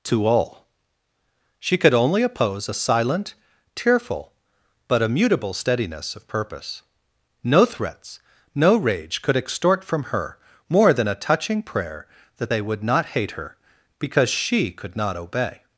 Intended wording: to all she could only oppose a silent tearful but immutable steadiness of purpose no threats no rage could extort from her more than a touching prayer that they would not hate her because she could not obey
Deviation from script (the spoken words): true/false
false